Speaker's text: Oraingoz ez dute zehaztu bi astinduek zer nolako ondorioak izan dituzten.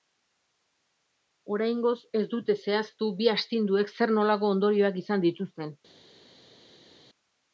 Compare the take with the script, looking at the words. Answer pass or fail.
pass